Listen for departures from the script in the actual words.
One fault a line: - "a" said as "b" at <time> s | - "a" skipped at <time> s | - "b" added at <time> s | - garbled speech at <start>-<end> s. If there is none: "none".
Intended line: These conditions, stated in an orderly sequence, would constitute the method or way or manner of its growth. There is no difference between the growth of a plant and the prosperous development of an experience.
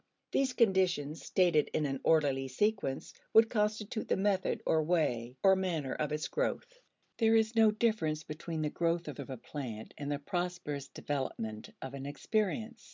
- "of" added at 9.2 s